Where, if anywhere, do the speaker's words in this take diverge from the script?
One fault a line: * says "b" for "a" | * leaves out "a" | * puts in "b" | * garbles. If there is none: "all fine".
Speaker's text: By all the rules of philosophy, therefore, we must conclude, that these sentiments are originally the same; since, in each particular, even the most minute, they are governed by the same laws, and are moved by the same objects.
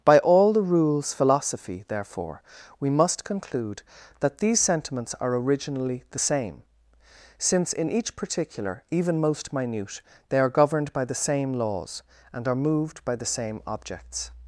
* leaves out "of"
* leaves out "the"